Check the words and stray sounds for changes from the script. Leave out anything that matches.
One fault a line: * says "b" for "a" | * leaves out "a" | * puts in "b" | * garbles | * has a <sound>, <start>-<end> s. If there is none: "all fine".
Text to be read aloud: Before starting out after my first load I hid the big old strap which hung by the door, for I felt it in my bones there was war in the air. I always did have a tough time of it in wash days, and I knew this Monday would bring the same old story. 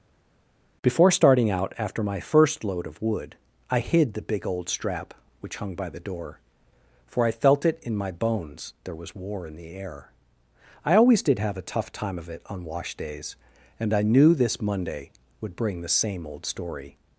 * puts in "of wood"
* says "on" for "in"